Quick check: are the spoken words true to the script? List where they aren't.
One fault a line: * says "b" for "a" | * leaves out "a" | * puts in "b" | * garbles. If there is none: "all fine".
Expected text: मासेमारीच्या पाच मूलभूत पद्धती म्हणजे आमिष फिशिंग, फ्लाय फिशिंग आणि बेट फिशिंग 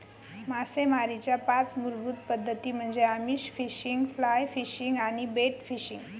all fine